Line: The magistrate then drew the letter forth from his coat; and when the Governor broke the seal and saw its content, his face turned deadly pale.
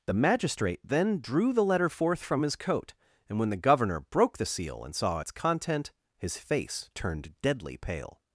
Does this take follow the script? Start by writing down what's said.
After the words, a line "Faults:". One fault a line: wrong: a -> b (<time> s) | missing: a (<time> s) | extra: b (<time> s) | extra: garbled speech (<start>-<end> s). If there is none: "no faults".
The magistrate then drew the letter forth from his coat; and when the Governor broke the seal and saw its content, his face turned deadly pale.
Faults:
no faults